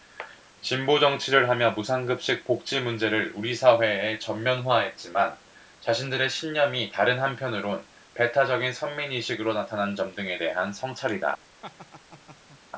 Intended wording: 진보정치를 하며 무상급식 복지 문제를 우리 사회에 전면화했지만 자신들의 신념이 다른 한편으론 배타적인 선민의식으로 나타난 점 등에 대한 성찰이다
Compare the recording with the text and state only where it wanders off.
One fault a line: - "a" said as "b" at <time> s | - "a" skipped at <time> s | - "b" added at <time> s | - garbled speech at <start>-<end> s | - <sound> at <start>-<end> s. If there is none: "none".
- laugh at 11.6-12.6 s